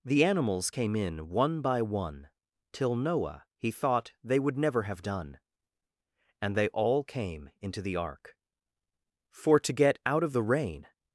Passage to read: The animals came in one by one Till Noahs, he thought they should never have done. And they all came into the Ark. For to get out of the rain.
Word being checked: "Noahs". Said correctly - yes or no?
no